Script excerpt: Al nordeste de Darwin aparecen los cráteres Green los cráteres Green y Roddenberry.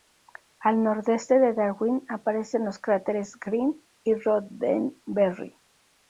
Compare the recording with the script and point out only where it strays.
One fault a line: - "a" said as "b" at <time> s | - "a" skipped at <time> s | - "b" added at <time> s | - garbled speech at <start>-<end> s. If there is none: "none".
- "los cráteres Green" skipped at 3.8 s